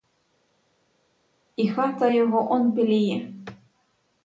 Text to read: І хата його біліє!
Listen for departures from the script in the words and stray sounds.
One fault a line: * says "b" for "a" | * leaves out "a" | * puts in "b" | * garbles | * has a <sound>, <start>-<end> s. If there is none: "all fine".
* puts in "он"